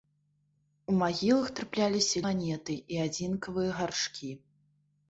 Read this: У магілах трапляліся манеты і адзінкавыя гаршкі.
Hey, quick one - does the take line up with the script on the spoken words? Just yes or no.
yes